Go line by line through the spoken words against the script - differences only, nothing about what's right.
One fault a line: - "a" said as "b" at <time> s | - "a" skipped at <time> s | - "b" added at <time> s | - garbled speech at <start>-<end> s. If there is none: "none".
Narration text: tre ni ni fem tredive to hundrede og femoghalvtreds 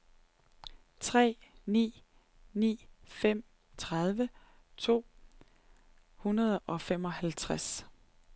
none